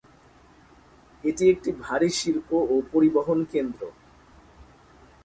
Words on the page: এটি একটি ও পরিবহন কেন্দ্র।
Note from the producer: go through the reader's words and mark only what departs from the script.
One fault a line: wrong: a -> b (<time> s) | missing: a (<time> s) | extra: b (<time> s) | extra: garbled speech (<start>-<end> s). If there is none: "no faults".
extra: ভারী শিল্প (1.8 s)